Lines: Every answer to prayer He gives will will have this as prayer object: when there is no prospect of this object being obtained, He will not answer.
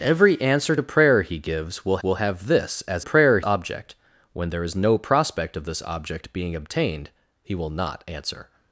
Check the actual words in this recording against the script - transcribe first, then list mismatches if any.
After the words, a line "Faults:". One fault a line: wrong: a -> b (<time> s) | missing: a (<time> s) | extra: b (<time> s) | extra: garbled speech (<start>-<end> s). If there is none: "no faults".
Every answer to prayer He gives will will have this as prayer object: when there is no prospect of this object being obtained, He will not answer.
Faults:
no faults